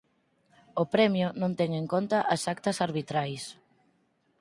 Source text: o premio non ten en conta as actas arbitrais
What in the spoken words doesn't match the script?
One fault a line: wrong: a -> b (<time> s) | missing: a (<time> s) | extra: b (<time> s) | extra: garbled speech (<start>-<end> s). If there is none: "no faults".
no faults